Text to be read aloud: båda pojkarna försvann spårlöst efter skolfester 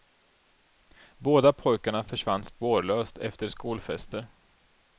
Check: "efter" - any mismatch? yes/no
no